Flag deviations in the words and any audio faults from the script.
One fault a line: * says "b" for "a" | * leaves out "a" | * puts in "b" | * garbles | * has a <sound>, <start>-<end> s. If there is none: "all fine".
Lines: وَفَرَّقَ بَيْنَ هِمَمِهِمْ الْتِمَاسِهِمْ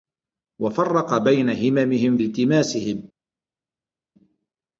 all fine